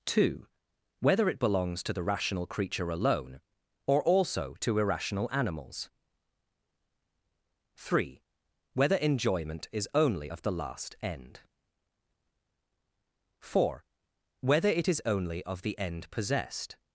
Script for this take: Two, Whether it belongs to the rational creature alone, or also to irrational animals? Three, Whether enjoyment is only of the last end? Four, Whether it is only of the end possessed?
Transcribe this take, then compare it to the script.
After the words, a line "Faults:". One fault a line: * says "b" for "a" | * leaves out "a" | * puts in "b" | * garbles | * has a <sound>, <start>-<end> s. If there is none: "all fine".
Two, Whether it belongs to the rational creature alone, or also to irrational animals? Three, Whether enjoyment is only of the last end? Four, Whether it is only of the end possessed?
Faults:
all fine